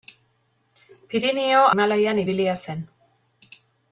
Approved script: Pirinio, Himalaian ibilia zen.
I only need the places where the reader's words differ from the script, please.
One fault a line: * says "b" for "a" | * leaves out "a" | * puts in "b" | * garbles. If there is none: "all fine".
all fine